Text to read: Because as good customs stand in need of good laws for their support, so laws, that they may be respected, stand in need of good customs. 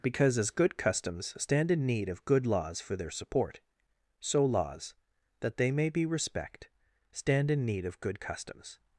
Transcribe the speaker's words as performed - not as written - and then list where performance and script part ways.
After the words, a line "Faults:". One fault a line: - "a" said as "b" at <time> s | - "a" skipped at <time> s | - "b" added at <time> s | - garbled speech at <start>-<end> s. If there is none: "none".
Because as good customs stand in need of good laws for their support, so laws, that they may be respect, stand in need of good customs.
Faults:
- "respected" said as "respect" at 6.1 s